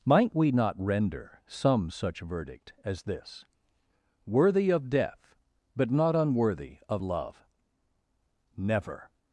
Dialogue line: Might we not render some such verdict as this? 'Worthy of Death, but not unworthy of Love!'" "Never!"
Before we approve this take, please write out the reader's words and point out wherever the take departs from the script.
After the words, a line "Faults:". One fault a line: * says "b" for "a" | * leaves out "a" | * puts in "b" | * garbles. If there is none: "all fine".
Might we not render some such verdict as this? 'Worthy of Death, but not unworthy of Love!'" "Never!"
Faults:
all fine